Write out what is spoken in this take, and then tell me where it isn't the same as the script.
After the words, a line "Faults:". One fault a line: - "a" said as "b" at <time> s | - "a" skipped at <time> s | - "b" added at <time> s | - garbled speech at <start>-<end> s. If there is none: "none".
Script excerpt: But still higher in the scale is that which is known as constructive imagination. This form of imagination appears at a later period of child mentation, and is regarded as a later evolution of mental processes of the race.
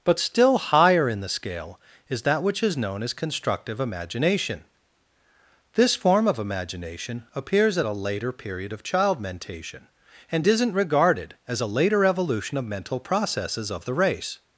But still higher in the scale is that which is known as constructive imagination. This form of imagination appears at a later period of child mentation, and isn't regarded as a later evolution of mental processes of the race.
Faults:
- "is" said as "isn't" at 10.5 s